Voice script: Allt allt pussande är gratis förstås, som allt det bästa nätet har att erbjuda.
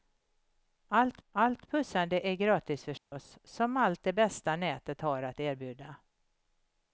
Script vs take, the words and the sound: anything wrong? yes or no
yes